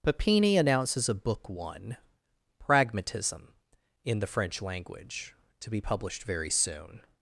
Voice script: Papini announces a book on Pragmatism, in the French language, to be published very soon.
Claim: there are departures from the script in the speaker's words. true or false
true